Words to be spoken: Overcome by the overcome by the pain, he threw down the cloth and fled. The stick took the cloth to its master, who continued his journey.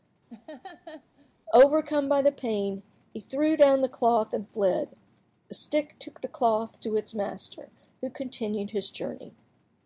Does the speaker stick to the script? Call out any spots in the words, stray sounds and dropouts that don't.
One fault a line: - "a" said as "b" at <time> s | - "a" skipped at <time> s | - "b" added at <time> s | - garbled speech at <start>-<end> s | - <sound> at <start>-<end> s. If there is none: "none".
- laugh at 0.3-1.3 s
- "overcome by the" skipped at 2.3 s